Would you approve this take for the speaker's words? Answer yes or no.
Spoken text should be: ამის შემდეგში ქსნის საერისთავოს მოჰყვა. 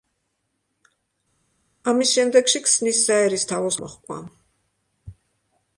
yes